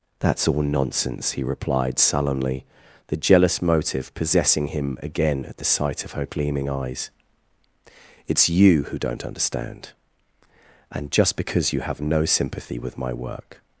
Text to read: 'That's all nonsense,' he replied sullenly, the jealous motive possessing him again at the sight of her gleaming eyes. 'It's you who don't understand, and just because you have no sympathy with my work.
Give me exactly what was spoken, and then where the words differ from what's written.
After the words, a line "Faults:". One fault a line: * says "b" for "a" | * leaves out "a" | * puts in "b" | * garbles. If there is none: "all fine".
'That's all nonsense,' he replied sullenly, the jealous motive possessing him again at the sight of her gleaming eyes. 'It's you who don't understand, and just because you have no sympathy with my work.
Faults:
all fine